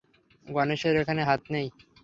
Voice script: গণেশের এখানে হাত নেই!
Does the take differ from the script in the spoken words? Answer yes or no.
no